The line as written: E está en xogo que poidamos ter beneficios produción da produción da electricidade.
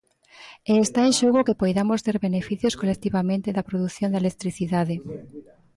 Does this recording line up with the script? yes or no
no